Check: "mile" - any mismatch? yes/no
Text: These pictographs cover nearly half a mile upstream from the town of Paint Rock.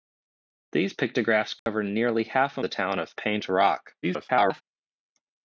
yes